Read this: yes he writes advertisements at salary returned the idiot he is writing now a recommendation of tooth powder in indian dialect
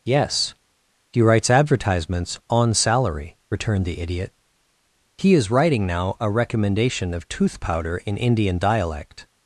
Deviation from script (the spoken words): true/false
true